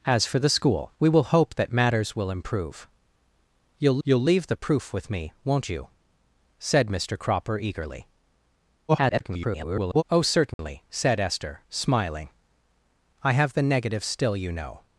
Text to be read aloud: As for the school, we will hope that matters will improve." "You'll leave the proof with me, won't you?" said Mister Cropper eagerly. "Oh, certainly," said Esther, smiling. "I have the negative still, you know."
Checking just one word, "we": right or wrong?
right